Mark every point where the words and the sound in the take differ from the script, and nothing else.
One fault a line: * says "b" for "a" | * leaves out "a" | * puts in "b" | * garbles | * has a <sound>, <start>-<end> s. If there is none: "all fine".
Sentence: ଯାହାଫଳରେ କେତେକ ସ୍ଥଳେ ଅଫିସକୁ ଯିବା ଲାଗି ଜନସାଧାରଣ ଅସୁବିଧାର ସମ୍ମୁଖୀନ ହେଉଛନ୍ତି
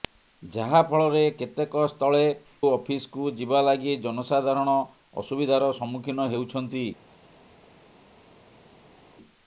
all fine